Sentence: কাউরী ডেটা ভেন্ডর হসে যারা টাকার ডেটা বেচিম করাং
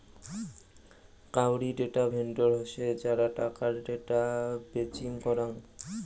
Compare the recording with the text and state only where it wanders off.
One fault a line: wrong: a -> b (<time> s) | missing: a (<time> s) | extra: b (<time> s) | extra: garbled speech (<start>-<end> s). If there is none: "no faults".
no faults